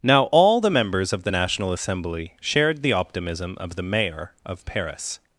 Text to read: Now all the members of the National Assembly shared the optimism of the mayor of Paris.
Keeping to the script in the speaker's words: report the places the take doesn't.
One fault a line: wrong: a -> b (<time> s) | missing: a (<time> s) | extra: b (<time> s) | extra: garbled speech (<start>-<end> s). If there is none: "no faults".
no faults